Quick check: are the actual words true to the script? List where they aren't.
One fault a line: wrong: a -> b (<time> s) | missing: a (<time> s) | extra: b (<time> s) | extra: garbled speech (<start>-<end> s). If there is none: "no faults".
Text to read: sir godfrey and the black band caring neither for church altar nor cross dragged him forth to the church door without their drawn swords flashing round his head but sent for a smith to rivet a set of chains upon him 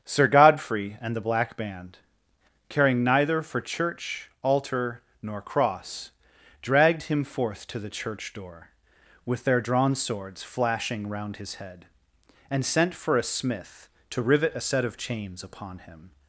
wrong: without -> with (9.2 s)
wrong: but -> and (12.5 s)